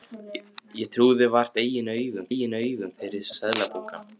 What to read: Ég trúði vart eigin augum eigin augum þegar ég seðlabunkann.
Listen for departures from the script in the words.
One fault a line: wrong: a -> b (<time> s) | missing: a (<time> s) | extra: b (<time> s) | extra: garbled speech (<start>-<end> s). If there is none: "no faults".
no faults